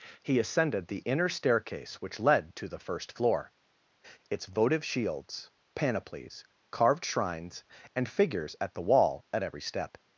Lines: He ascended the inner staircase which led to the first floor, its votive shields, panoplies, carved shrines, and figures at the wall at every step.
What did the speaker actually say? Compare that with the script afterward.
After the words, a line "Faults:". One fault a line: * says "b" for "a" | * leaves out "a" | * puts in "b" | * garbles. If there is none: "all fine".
He ascended the inner staircase which led to the first floor, its votive shields, panoplies, carved shrines, and figures at the wall at every step.
Faults:
all fine